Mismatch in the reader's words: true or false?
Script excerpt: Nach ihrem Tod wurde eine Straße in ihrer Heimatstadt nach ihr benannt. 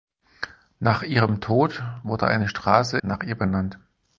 true